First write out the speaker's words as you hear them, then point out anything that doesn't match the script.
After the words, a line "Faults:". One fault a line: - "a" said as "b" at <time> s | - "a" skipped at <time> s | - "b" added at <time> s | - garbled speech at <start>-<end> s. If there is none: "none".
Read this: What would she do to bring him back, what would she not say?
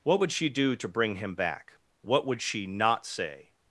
What would she do to bring him back, what would she not say?
Faults:
none